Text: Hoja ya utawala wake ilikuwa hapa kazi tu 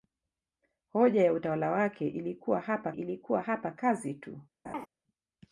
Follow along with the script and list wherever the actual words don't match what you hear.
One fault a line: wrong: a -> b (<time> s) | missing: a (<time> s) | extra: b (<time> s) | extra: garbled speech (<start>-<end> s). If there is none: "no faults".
extra: ilikuwa hapa (2.9 s)